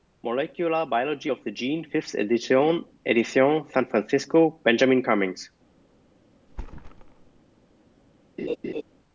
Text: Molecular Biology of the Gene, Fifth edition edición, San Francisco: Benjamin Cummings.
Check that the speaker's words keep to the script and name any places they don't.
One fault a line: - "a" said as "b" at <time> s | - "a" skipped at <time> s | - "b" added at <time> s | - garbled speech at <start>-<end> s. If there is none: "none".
none